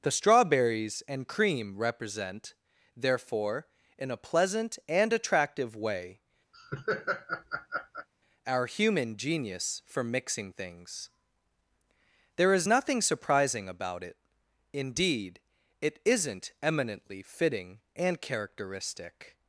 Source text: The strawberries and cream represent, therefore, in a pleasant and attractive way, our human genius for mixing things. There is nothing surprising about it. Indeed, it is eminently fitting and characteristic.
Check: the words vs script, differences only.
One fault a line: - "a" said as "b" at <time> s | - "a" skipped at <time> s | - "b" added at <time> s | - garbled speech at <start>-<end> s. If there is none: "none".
- "is" said as "isn't" at 16.0 s